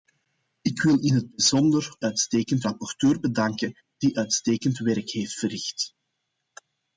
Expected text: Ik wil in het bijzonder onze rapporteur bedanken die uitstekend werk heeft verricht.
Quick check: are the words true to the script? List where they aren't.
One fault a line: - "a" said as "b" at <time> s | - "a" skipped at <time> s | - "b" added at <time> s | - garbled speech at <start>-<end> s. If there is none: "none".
- "onze" said as "uitstekend" at 2.0 s